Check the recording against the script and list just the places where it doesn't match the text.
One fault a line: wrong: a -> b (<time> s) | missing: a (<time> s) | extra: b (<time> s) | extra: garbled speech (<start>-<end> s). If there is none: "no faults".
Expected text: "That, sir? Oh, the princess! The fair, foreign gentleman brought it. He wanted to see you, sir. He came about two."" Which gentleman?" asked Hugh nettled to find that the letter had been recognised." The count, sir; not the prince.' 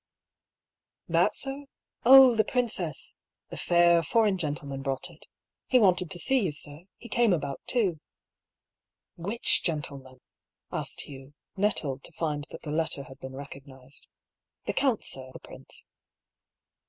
missing: not (15.3 s)